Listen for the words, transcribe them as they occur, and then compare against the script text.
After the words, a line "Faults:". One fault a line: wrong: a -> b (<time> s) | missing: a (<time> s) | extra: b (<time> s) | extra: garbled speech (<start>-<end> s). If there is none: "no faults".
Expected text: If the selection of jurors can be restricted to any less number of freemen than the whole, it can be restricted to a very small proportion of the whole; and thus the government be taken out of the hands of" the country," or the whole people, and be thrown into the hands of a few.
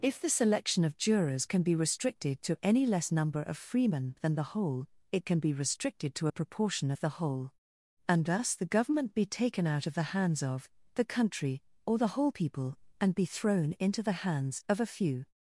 If the selection of jurors can be restricted to any less number of freemen than the whole, it can be restricted to a proportion of the whole; and thus the government be taken out of the hands of" the country," or the whole people, and be thrown into the hands of a few.
Faults:
missing: very small (6.3 s)